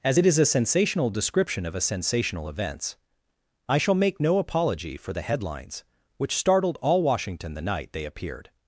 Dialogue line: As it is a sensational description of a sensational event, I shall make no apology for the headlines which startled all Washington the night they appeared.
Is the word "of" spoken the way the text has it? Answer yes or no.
yes